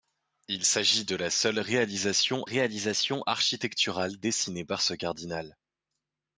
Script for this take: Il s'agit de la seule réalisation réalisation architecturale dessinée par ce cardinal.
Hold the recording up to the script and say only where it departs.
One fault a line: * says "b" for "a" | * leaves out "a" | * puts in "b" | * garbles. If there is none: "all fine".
all fine